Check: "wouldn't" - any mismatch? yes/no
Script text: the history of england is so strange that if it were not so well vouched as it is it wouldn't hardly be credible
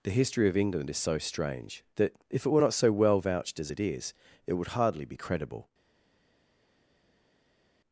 yes